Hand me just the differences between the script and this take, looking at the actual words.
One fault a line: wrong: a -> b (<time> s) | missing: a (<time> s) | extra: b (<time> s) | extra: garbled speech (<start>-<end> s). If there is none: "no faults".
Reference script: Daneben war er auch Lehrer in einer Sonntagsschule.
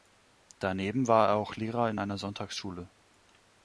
no faults